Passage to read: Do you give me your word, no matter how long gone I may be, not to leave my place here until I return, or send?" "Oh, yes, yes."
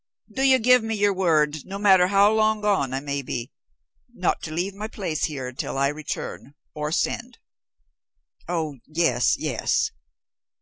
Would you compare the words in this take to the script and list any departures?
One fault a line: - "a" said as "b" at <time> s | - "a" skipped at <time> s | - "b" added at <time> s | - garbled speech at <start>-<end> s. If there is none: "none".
none